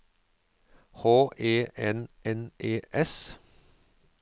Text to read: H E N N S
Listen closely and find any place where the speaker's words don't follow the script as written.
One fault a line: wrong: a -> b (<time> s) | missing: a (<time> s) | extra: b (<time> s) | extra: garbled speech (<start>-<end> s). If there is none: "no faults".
extra: E (2.6 s)